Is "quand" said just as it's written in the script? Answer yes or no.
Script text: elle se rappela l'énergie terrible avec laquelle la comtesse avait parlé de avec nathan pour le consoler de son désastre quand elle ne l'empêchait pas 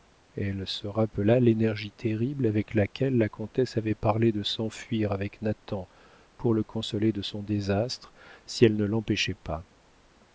no